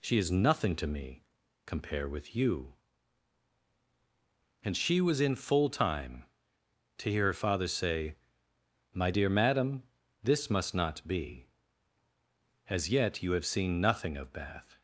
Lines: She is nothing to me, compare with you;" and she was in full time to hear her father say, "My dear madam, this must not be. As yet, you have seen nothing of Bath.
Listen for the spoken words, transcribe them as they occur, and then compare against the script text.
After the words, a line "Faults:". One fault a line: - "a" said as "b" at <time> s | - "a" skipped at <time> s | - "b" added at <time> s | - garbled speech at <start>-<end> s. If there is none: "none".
She is nothing to me, compare with you;" and she was in full time to hear her father say, "My dear madam, this must not be. As yet, you have seen nothing of Bath.
Faults:
none